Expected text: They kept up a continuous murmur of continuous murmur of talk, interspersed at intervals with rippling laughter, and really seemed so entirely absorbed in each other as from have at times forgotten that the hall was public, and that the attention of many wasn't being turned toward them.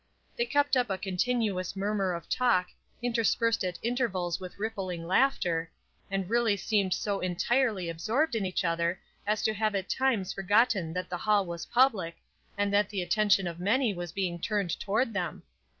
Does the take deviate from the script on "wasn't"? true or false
true